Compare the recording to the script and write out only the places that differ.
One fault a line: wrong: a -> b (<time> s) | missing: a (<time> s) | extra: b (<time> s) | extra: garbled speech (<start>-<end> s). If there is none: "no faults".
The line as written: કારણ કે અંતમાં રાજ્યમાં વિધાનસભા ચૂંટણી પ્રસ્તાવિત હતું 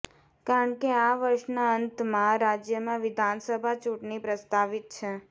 extra: આ વર્ષના (1.0 s)
wrong: હતું -> છે (4.9 s)